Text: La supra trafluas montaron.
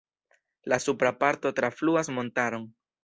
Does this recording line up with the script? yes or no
no